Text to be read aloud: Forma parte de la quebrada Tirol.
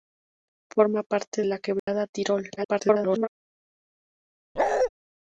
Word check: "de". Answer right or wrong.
wrong